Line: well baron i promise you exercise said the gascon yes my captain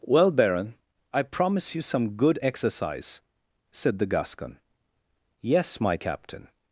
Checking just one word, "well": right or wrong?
right